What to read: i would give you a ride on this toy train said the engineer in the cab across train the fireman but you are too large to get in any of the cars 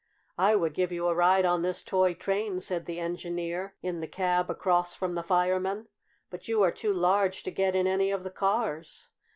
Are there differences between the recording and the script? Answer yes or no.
yes